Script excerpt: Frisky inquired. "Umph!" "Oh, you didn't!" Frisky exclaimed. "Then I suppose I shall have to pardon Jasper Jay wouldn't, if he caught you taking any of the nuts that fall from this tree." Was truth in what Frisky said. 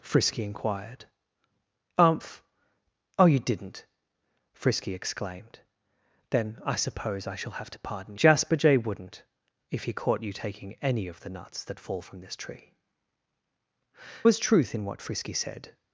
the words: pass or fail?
pass